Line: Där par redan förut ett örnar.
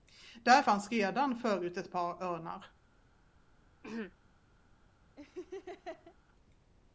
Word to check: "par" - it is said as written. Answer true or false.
false